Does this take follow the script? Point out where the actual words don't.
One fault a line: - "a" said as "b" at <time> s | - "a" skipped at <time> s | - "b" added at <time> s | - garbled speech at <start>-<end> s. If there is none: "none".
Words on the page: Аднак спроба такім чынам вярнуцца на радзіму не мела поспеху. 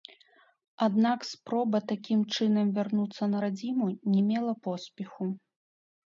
none